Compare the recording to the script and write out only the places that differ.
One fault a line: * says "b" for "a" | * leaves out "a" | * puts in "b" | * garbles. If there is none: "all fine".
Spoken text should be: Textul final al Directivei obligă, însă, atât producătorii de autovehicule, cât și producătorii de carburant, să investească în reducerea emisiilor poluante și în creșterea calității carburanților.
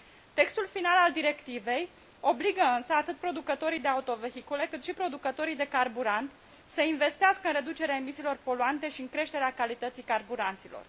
all fine